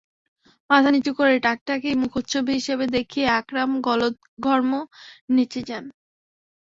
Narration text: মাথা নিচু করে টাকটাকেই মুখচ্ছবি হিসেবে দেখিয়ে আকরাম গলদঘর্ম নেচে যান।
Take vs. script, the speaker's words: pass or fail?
pass